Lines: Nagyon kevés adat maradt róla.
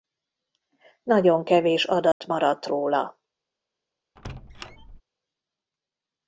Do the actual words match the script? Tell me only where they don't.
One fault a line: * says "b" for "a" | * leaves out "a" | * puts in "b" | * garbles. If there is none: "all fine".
all fine